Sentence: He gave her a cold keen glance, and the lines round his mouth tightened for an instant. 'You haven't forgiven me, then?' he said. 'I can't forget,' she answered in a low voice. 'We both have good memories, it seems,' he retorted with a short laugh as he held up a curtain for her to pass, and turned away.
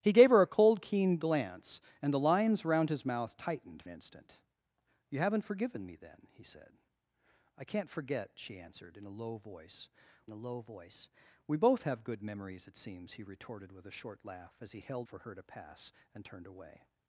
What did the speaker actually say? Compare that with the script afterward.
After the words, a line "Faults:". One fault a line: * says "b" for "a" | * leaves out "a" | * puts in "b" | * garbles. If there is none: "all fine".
He gave her a cold keen glance, and the lines round his mouth tightened an instant. 'You haven't forgiven me, then?' he said. 'I can't forget,' she answered in a low voice a low voice. 'We both have good memories, it seems,' he retorted with a short laugh as he held for her to pass, and turned away.
Faults:
* leaves out "for"
* puts in "a low voice"
* leaves out "up a curtain"